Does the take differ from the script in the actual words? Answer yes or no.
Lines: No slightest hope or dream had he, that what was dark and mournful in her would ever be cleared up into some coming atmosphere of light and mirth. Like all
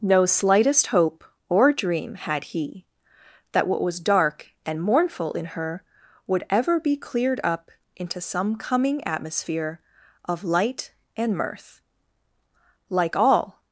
no